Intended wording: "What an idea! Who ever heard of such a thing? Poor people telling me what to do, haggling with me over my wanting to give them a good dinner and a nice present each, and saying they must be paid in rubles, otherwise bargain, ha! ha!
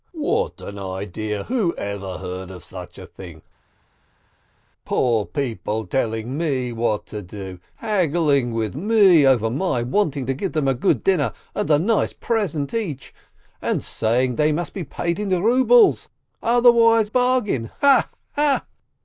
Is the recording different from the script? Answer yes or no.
no